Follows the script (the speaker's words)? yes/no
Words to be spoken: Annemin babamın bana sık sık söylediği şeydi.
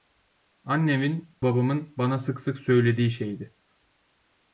yes